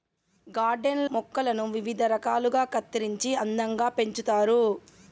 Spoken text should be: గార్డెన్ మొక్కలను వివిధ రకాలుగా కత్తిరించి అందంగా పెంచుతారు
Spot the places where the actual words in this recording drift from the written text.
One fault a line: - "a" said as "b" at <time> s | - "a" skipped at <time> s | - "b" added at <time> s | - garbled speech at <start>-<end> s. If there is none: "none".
none